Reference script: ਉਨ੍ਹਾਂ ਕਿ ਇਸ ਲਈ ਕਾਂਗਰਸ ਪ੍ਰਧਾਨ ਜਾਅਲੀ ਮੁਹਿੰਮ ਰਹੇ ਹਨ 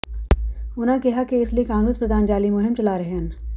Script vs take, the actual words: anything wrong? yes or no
yes